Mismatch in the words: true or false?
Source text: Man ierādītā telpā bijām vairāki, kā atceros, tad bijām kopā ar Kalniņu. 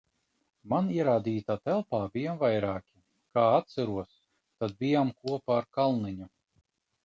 false